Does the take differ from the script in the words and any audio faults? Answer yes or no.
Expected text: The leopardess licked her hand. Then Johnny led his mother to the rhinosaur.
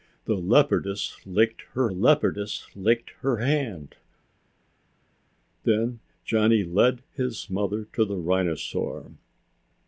yes